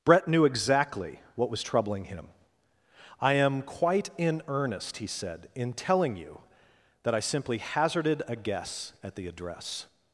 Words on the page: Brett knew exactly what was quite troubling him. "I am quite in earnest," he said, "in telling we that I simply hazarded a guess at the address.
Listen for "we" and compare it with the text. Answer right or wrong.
wrong